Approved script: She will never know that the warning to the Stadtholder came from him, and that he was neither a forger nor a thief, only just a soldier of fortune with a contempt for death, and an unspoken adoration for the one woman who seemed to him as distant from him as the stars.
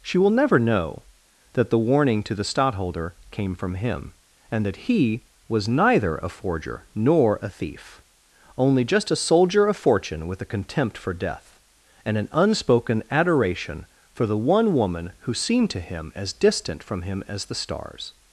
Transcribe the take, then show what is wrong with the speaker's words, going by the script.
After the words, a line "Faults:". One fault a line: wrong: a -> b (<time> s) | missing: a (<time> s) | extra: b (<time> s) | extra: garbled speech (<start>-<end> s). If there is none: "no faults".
She will never know that the warning to the Stadtholder came from him, and that he was neither a forger nor a thief, only just a soldier of fortune with a contempt for death, and an unspoken adoration for the one woman who seemed to him as distant from him as the stars.
Faults:
no faults